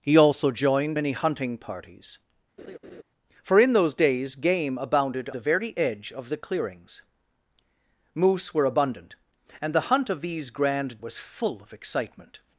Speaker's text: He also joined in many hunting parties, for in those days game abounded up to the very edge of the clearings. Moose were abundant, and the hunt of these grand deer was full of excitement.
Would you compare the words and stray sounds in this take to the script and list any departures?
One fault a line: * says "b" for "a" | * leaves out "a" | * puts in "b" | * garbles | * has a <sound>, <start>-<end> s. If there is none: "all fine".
* leaves out "in"
* has a laugh, 2.6-3.0 s
* leaves out "up to"
* leaves out "deer"